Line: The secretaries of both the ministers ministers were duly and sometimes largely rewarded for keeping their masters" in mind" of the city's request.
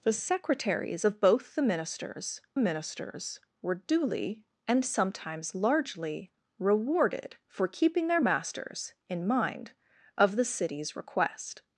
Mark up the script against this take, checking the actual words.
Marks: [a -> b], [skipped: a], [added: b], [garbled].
The secretaries of both the ministers ministers were duly and sometimes largely rewarded for keeping their masters" in mind" of the city's request.